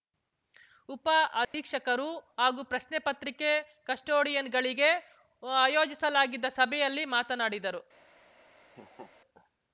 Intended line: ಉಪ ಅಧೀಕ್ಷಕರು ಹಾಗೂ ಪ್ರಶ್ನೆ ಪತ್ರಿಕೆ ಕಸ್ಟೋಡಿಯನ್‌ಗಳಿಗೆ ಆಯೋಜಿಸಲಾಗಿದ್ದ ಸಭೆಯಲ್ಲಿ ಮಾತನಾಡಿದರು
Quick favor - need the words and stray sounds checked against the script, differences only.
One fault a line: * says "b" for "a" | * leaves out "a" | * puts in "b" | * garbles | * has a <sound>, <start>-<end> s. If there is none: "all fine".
* has a dropout, 1.4-1.5 s
* has a laugh, 8.7-9.1 s